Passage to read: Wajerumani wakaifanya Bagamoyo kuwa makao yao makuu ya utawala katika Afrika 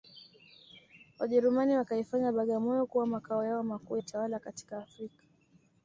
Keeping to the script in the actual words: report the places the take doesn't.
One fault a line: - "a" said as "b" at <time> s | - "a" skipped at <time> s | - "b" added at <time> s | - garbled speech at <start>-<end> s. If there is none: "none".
- "ya" skipped at 4.0 s